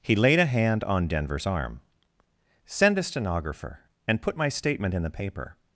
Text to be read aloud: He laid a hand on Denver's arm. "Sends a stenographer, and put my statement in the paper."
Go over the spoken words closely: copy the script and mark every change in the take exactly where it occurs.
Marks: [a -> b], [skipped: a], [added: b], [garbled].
He laid a hand on Denver's arm. ["Sends -> Send] a stenographer, and put my statement in the paper."